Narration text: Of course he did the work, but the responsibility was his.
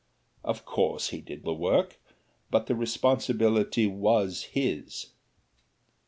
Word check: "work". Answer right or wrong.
right